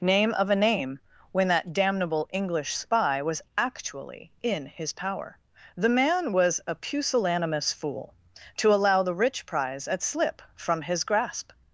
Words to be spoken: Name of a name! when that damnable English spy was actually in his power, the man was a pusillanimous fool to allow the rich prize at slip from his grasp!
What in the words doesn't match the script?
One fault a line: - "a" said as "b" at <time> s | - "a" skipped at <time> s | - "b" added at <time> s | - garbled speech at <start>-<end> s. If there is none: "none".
none